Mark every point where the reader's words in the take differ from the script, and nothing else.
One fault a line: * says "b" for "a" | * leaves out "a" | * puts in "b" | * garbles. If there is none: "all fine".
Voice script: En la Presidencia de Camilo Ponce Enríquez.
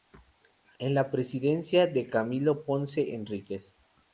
all fine